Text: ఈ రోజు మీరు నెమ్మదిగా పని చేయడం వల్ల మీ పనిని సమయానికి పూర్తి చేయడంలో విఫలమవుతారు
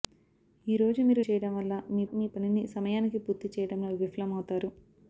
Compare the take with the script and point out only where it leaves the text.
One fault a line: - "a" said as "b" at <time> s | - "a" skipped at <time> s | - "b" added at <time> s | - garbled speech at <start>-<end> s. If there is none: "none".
- "నెమ్మదిగా పని" skipped at 1.2 s
- "మీ" added at 2.1 s